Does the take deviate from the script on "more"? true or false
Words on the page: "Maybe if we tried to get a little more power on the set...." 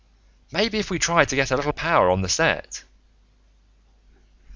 true